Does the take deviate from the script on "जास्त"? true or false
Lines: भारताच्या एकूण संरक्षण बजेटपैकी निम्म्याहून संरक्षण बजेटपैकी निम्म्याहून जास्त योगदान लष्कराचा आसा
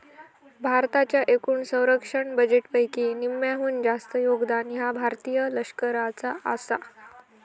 true